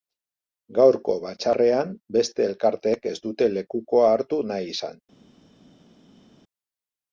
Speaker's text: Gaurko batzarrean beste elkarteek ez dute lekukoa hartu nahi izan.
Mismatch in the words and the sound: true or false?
false